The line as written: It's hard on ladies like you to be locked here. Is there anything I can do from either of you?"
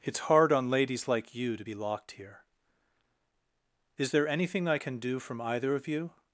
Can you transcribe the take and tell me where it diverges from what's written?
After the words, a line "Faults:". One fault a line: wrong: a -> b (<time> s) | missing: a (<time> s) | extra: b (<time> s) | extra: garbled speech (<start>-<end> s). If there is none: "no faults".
It's hard on ladies like you to be locked here. Is there anything I can do from either of you?"
Faults:
no faults